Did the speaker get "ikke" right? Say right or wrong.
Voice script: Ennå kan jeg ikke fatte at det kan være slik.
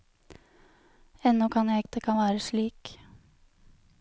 wrong